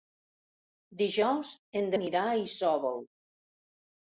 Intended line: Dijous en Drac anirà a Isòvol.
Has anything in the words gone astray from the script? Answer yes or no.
yes